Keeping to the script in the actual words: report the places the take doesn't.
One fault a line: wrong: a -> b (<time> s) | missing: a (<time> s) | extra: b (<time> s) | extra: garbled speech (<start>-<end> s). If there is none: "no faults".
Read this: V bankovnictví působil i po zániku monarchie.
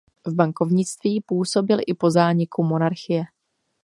no faults